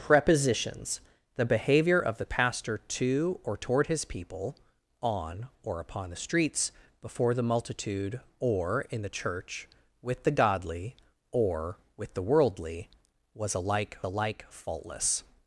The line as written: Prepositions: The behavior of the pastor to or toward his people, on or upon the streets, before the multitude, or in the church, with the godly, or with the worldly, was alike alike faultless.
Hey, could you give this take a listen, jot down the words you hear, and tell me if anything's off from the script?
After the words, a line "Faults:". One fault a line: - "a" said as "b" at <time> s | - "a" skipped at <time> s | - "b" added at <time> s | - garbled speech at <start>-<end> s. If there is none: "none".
Prepositions: The behavior of the pastor to or toward his people, on or upon the streets, before the multitude, or in the church, with the godly, or with the worldly, was alike alike faultless.
Faults:
none